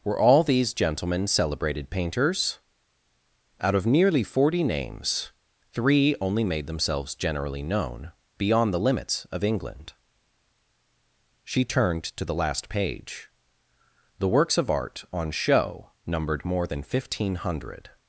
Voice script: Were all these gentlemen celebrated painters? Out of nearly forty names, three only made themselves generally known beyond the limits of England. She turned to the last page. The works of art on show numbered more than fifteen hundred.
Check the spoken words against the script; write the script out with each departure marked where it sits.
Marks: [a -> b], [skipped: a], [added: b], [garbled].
Were all these gentlemen celebrated painters? Out of nearly forty names, three only made themselves generally known beyond the limits of England. She turned to the last page. The works of art on show numbered more than fifteen hundred.